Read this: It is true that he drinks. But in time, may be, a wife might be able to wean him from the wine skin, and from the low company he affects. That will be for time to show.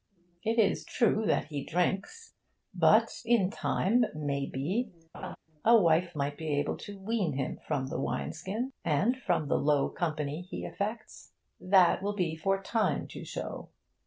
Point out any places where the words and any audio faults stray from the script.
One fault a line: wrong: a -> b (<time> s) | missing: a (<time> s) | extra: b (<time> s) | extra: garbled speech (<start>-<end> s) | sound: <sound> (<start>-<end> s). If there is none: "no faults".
sound: laugh (5.1-5.4 s)